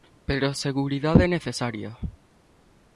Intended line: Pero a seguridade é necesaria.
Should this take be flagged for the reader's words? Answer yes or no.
no